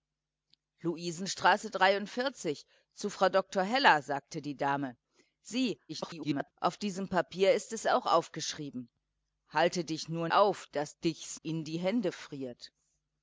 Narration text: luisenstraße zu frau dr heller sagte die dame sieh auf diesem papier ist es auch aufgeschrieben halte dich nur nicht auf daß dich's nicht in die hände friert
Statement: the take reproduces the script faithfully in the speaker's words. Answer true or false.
false